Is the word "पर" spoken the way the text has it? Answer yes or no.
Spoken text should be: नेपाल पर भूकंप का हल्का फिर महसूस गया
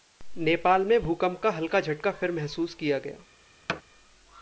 no